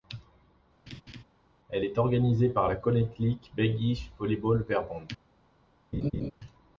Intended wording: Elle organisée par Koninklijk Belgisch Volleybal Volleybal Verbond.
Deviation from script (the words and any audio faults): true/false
true